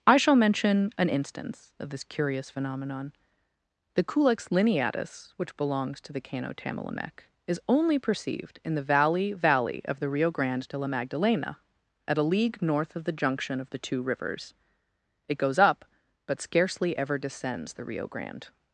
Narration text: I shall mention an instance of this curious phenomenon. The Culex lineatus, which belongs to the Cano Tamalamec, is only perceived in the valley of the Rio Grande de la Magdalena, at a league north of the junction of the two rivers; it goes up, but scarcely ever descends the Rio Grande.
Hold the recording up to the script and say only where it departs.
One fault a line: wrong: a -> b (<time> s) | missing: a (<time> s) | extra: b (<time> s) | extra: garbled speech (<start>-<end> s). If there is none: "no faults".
extra: valley (9.3 s)